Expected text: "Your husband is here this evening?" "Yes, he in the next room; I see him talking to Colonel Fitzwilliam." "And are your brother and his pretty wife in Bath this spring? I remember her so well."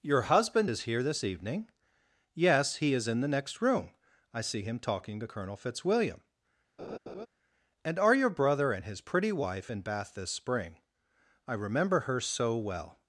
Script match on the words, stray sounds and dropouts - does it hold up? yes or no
no